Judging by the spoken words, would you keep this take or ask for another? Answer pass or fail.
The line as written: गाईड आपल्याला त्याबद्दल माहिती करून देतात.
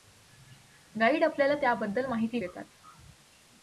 fail